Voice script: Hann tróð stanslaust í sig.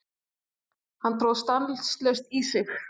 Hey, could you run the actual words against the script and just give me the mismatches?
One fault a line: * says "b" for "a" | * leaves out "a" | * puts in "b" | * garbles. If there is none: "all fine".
all fine